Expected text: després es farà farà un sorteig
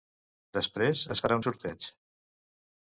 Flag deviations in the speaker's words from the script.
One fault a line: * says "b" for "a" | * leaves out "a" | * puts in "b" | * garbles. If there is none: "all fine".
* leaves out "farà"